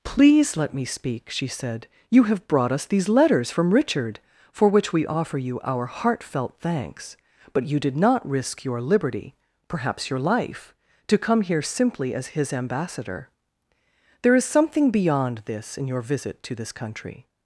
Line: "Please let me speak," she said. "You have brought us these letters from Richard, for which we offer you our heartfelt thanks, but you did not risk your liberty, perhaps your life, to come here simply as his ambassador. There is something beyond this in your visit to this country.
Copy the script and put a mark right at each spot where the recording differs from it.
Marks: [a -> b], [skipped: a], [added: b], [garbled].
"Please let me speak," she said. "You have brought us these letters from Richard, for which we offer you our heartfelt thanks, but you did not risk your liberty, perhaps your life, to come here simply as his ambassador. There is something beyond this in your visit to this country.